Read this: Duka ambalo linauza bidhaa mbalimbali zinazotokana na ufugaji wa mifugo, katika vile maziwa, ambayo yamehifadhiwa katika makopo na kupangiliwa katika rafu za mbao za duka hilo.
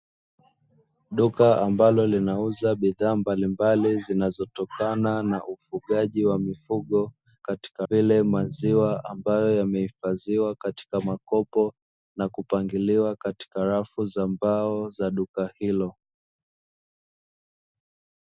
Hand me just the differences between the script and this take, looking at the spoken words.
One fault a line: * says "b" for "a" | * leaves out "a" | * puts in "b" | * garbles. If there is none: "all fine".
all fine